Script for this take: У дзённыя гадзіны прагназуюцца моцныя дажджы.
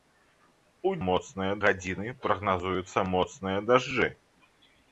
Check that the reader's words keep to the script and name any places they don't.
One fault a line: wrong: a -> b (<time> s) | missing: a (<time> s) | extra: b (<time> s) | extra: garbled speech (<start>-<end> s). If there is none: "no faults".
wrong: дзённыя -> моцныя (1.1 s)